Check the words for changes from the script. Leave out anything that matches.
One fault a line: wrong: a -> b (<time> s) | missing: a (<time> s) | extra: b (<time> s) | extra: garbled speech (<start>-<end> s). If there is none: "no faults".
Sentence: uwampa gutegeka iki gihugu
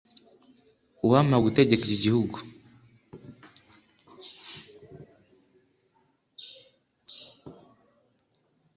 no faults